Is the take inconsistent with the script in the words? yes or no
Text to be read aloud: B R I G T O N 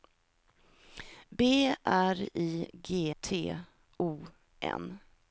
no